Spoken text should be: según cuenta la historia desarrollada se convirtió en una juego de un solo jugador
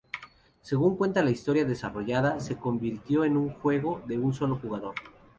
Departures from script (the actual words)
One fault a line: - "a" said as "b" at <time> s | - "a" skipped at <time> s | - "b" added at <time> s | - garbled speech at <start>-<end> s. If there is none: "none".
- "una" said as "un" at 3.4 s